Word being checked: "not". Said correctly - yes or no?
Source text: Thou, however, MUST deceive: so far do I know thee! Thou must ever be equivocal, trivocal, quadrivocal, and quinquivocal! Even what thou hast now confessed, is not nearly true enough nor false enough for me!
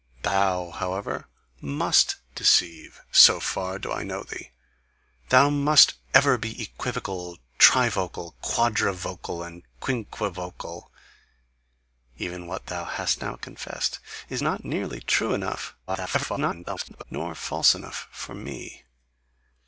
yes